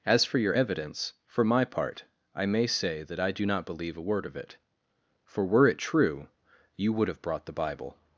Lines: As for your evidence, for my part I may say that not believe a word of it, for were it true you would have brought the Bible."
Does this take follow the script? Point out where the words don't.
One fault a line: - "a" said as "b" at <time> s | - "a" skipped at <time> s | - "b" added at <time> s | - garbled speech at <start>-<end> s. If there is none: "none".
- "I do" added at 3.2 s